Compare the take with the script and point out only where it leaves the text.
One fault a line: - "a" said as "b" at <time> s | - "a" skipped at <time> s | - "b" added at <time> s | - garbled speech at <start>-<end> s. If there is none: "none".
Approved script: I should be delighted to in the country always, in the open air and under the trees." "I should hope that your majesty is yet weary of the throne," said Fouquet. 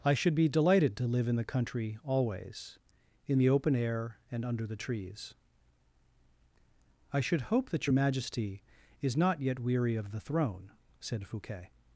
- "live" added at 1.1 s
- "not" added at 9.2 s